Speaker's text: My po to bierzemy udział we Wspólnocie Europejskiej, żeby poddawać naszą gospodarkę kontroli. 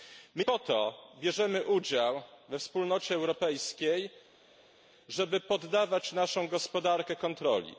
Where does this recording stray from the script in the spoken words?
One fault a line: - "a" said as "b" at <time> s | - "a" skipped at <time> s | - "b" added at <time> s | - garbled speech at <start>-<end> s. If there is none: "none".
none